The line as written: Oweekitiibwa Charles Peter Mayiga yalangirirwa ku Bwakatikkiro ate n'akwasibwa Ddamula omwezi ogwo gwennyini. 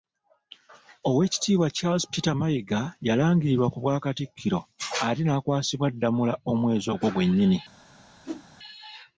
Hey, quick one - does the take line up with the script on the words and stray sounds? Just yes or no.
no